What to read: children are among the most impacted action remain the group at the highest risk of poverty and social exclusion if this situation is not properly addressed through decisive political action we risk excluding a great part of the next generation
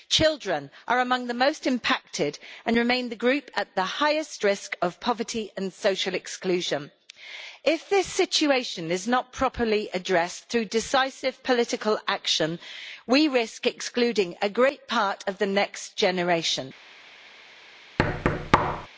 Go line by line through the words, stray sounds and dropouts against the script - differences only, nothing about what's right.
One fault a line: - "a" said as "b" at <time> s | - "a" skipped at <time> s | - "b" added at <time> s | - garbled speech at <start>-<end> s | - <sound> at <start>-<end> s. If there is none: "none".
- "action" said as "and" at 2.6 s
- thud at 18.0-18.9 s